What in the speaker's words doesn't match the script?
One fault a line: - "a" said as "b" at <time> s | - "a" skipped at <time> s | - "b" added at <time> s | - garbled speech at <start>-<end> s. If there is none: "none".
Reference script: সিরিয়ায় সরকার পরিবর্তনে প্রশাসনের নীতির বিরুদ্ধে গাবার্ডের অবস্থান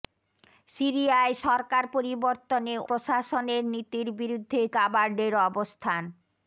none